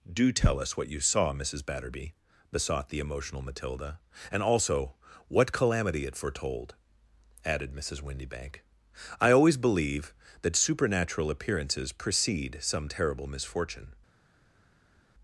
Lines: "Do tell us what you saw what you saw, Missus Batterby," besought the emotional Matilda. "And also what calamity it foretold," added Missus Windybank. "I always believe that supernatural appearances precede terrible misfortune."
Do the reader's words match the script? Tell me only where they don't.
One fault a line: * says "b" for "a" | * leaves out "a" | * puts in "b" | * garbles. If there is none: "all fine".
* leaves out "what you saw"
* puts in "some"